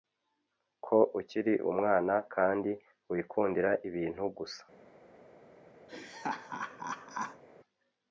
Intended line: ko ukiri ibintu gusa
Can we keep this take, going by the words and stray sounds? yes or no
no